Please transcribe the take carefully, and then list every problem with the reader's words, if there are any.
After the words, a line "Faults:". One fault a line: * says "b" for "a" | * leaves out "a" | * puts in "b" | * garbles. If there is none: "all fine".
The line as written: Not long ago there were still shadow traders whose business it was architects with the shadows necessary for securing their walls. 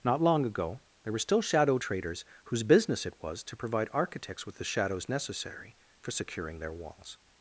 Not long ago there were still shadow traders whose business it was to provide architects with the shadows necessary for securing their walls.
Faults:
* puts in "to provide"